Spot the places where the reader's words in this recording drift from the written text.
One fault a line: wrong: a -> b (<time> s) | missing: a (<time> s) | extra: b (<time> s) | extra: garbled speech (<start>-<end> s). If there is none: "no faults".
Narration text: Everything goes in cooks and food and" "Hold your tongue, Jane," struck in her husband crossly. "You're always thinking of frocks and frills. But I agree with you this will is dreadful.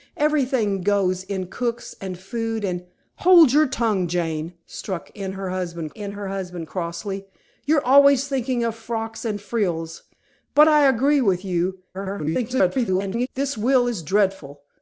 extra: in her husband (5.9 s)
extra: garbled speech (11.9-13.3 s)